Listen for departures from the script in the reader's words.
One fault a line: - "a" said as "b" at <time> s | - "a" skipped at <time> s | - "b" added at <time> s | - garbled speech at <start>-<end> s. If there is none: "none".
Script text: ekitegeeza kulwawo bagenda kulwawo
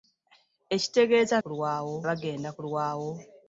none